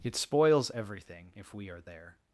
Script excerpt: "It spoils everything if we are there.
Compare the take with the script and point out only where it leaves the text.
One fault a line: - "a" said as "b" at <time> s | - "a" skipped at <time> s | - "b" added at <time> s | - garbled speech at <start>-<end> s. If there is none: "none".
none